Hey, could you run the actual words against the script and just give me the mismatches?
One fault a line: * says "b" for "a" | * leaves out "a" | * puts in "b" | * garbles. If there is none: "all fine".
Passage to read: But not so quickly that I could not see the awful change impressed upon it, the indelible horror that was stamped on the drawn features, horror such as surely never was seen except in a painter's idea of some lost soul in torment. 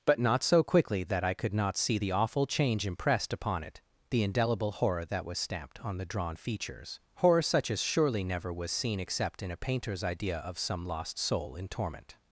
all fine